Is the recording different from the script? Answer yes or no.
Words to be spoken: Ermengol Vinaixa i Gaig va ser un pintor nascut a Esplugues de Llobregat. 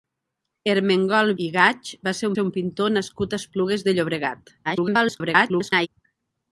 yes